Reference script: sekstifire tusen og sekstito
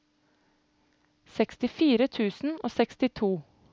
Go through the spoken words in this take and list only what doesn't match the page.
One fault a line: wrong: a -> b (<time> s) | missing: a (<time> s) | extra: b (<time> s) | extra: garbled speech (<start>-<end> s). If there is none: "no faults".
no faults